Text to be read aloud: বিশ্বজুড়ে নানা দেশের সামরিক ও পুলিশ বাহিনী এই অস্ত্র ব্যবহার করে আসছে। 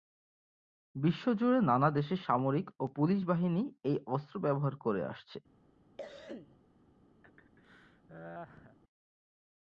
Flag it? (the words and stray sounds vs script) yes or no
yes